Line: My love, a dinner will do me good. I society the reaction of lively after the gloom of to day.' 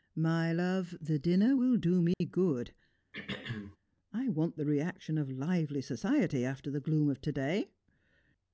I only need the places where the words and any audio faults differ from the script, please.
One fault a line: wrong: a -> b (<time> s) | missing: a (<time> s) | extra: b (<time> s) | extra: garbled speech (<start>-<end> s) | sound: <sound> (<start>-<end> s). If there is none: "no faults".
wrong: a -> the (1.0 s)
sound: dropout (2.1-2.2 s)
sound: throat clearing (3.1-3.8 s)
wrong: society -> want (4.3 s)
extra: society (5.8 s)